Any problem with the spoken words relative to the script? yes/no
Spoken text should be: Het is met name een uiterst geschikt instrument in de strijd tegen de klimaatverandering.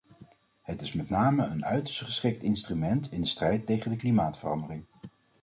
no